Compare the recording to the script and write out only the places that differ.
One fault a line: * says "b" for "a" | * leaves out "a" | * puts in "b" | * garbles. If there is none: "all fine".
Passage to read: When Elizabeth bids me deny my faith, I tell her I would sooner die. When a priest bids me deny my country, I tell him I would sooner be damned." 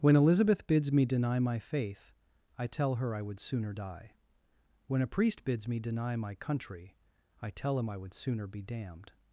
all fine